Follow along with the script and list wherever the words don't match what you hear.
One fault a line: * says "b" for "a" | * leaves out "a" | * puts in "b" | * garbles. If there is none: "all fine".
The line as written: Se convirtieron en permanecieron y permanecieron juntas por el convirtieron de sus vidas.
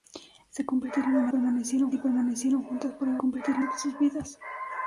all fine